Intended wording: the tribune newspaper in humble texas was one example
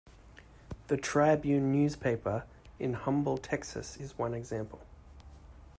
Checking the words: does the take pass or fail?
fail